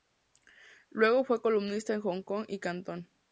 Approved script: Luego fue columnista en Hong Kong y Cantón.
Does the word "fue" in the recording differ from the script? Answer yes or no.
no